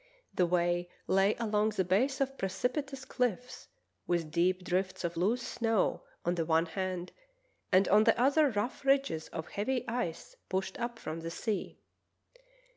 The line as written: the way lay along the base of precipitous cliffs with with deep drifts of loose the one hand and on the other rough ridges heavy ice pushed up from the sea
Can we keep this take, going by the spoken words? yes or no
no